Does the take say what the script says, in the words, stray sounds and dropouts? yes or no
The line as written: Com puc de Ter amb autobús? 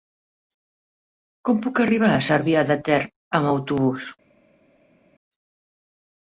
no